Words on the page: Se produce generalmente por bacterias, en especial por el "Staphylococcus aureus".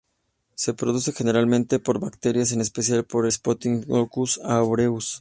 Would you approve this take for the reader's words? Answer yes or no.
no